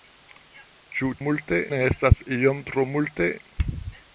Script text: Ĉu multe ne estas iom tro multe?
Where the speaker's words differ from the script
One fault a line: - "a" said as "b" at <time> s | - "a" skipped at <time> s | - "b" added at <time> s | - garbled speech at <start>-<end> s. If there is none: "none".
none